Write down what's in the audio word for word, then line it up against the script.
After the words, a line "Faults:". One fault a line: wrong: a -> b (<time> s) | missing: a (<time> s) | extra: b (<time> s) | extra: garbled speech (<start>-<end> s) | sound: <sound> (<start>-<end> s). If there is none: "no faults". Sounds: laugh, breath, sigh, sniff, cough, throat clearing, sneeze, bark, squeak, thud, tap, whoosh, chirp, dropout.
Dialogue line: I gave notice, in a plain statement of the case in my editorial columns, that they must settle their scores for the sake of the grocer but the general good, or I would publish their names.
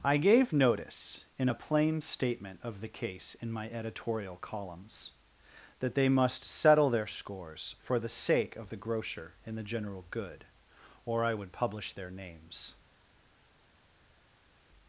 I gave notice, in a plain statement of the case in my editorial columns, that they must settle their scores for the sake of the grocer and the general good, or I would publish their names.
Faults:
wrong: but -> and (9.5 s)